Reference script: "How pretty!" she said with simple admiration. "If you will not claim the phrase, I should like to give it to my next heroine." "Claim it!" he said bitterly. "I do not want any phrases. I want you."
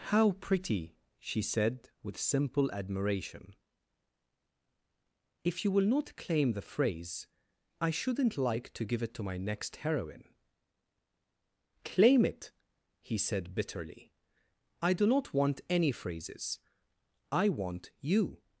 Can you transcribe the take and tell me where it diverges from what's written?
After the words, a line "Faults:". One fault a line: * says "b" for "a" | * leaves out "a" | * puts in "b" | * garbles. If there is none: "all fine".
"How pretty!" she said with simple admiration. "If you will not claim the phrase, I shouldn't like to give it to my next heroine." "Claim it!" he said bitterly. "I do not want any phrases. I want you."
Faults:
* says "shouldn't" for "should"